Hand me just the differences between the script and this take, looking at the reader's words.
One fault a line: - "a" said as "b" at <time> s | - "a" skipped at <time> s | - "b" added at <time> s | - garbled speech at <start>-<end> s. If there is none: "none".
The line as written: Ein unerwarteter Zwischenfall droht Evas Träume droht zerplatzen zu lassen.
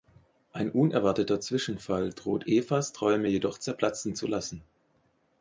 - "droht" said as "jedoch" at 3.3 s